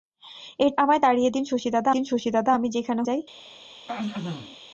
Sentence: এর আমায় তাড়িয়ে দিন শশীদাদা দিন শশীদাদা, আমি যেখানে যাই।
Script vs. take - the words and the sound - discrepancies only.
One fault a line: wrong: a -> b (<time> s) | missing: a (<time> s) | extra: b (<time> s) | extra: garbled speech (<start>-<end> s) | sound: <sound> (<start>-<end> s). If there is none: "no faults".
sound: throat clearing (3.9-4.6 s)